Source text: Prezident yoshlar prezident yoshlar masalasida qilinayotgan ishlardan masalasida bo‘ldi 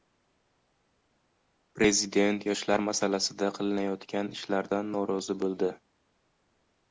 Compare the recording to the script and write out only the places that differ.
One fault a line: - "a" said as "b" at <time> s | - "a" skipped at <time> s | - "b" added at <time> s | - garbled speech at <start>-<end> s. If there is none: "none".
- "prezident yoshlar" skipped at 2.8 s
- "masalasida" said as "norozi" at 4.9 s